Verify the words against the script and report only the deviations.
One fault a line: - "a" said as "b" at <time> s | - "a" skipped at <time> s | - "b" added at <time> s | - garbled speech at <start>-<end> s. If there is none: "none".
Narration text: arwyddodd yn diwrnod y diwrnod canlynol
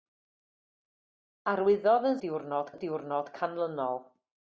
none